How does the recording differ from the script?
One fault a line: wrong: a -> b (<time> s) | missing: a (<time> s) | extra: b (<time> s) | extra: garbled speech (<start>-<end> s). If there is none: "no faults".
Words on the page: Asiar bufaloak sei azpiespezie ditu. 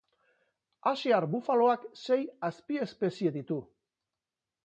no faults